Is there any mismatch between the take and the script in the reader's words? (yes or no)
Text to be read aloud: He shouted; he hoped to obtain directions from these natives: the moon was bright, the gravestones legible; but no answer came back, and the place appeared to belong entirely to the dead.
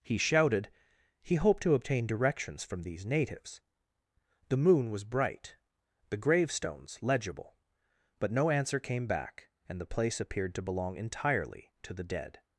no